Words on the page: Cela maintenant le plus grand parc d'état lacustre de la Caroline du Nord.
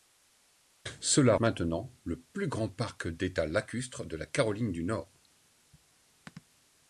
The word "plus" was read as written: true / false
true